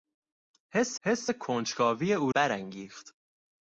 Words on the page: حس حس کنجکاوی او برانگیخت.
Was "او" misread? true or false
false